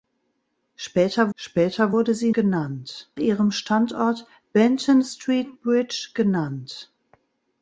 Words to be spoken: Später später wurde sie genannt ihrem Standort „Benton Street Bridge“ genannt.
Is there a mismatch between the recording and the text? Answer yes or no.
no